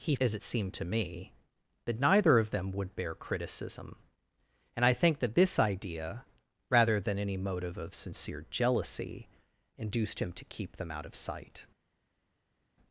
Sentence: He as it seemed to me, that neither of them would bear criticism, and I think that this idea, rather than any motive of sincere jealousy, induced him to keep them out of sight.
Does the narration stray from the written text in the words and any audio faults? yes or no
no